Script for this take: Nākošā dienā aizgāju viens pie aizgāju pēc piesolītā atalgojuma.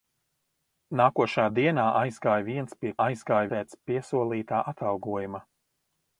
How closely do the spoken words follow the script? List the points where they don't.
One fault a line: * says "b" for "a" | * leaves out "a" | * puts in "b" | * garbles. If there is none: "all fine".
all fine